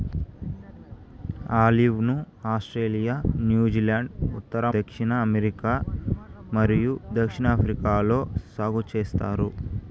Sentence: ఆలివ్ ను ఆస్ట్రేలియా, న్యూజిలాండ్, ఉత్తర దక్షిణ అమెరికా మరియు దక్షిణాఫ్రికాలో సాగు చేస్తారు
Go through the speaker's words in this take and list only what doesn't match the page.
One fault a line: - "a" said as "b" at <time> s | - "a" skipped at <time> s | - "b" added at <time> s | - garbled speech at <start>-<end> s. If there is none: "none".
none